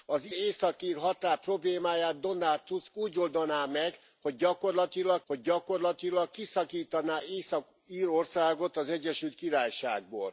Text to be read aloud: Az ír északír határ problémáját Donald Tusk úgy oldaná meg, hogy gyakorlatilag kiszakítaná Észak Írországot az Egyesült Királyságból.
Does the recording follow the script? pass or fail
fail